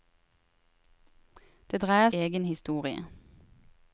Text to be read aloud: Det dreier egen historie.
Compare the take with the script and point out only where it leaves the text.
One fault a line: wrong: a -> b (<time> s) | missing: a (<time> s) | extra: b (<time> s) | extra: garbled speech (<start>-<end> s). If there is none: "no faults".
no faults